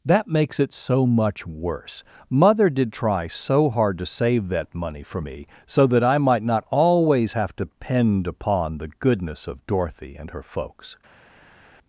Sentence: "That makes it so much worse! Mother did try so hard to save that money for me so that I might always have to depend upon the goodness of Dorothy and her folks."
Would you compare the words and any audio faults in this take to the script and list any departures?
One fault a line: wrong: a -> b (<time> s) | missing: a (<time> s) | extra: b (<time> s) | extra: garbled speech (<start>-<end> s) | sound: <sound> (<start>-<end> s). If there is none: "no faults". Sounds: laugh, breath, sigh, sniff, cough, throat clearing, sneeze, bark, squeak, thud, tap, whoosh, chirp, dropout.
extra: not (6.4 s)